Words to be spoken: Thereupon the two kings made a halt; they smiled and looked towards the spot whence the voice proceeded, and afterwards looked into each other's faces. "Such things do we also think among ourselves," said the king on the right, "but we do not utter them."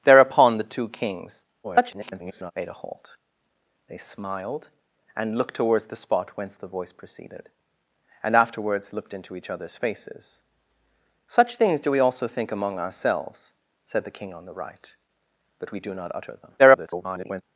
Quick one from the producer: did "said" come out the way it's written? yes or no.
yes